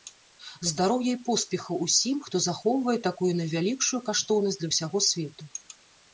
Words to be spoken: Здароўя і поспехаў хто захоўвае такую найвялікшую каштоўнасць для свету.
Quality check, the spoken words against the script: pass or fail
fail